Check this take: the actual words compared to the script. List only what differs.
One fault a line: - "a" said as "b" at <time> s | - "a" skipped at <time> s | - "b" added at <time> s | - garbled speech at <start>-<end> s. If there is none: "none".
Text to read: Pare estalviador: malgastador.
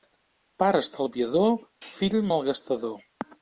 - "fill" added at 1.9 s